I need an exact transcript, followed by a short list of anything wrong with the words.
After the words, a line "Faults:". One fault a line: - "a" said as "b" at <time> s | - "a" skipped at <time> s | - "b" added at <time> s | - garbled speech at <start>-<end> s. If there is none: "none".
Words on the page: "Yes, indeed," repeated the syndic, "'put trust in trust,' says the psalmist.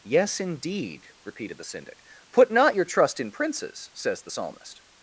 "Yes, indeed," repeated the syndic, "'put not your trust in princes,' says the psalmist.
Faults:
- "not your" added at 2.5 s
- "trust" said as "princes" at 3.3 s